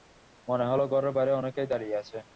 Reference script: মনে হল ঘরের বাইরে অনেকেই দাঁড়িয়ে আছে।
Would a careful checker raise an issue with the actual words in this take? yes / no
no